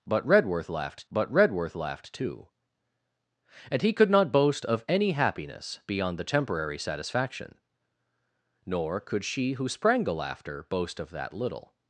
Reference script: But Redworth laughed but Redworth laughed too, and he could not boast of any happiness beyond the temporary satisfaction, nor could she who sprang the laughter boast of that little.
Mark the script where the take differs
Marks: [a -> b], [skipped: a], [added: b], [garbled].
But Redworth laughed but Redworth laughed too, and he could not boast of any happiness beyond the temporary satisfaction, nor could she who sprang the laughter boast of that little.